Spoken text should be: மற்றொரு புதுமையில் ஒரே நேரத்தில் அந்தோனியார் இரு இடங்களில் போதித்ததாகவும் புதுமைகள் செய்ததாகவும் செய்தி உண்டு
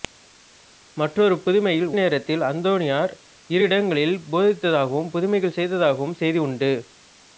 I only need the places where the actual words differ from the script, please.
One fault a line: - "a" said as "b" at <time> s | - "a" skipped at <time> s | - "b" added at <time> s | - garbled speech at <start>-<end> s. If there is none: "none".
- "ஒரே" skipped at 1.9 s